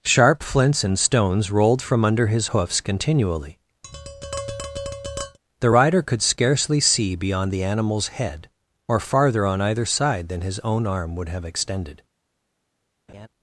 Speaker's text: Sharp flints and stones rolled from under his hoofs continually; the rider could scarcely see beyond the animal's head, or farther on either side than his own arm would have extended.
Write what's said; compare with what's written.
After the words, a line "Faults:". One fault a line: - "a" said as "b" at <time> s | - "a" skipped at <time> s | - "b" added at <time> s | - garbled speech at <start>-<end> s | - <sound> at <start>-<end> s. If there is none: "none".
Sharp flints and stones rolled from under his hoofs continually; the rider could scarcely see beyond the animal's head, or farther on either side than his own arm would have extended.
Faults:
- tap at 3.8-5.4 s
- laugh at 13.1-13.3 s